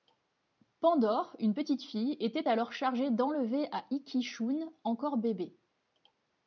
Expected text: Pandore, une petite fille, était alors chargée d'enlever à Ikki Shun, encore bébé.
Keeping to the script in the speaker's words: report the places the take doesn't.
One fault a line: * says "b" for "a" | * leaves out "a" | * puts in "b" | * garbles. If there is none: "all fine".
all fine